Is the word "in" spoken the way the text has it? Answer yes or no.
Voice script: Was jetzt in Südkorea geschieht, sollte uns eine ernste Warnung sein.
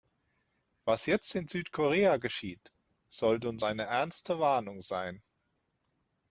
yes